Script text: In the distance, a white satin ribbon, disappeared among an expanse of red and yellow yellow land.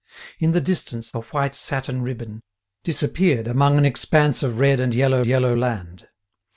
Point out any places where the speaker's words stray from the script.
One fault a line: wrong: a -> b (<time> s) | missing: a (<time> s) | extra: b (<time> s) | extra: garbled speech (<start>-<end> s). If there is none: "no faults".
no faults